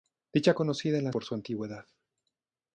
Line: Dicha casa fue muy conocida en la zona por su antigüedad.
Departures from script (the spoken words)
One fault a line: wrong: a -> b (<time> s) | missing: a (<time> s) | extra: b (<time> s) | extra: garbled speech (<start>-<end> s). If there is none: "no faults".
missing: casa fue muy (0.6 s)
missing: zona (1.1 s)